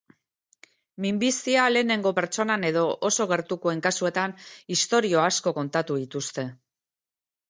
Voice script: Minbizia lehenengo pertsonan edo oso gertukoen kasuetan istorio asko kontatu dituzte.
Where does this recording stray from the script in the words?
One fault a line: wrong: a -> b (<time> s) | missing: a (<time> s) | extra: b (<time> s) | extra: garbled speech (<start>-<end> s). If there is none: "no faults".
no faults